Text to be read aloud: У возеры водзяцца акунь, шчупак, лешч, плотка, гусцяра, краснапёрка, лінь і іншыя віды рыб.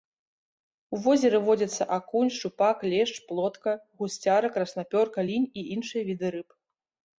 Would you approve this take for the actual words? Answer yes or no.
yes